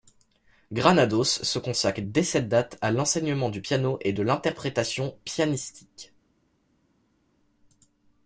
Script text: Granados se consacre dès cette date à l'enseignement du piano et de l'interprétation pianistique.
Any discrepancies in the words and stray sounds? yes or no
no